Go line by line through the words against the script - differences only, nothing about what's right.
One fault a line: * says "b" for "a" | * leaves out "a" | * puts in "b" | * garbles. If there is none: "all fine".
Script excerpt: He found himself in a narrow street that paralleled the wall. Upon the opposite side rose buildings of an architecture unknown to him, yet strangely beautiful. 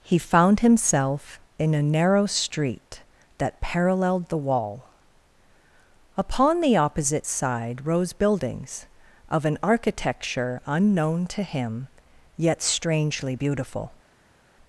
all fine